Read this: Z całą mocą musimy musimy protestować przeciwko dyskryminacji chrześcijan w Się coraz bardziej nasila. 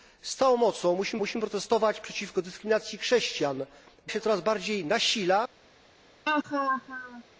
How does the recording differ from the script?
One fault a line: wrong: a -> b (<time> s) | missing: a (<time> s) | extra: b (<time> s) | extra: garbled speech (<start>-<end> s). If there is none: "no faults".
no faults